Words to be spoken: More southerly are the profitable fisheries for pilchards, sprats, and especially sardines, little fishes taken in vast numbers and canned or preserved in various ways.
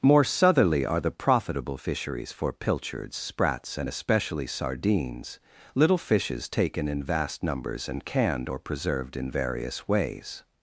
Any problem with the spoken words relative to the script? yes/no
no